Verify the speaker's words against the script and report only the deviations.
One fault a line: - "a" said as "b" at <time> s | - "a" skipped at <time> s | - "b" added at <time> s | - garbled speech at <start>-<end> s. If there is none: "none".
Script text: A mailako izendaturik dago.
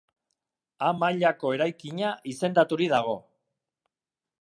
- "eraikina" added at 1.6 s